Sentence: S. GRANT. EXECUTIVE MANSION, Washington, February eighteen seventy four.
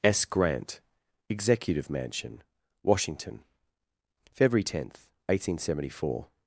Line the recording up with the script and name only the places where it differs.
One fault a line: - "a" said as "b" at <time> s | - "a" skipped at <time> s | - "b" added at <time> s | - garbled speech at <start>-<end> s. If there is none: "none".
- "tenth" added at 4.6 s